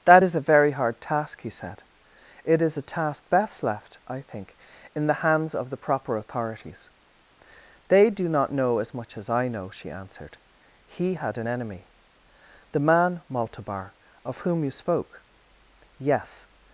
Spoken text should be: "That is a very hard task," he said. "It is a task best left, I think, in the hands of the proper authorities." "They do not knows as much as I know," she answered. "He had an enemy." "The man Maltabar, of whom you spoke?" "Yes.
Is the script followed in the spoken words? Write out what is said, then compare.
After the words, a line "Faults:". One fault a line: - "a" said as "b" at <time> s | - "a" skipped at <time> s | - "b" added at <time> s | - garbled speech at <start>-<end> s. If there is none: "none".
"That is a very hard task," he said. "It is a task best left, I think, in the hands of the proper authorities." "They do not know as much as I know," she answered. "He had an enemy." "The man Maltabar, of whom you spoke?" "Yes.
Faults:
- "knows" said as "know" at 8.5 s